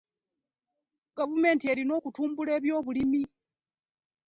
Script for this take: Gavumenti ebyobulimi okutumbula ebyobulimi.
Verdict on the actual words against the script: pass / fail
fail